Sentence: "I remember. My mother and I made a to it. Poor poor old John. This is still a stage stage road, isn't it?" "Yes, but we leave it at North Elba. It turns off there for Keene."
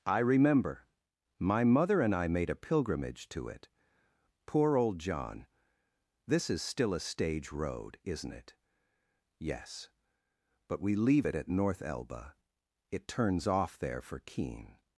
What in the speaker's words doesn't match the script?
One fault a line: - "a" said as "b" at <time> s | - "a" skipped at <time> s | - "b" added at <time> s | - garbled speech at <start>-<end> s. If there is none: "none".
- "pilgrimage" added at 2.5 s
- "poor" skipped at 4.8 s
- "stage" skipped at 7.5 s